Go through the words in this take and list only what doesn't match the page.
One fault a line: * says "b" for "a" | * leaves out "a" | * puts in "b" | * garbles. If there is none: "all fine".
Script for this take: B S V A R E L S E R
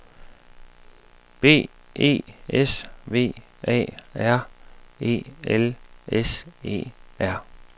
* puts in "E"